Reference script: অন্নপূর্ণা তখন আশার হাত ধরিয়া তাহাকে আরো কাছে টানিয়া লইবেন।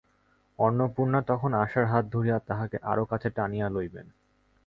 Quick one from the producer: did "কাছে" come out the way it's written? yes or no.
yes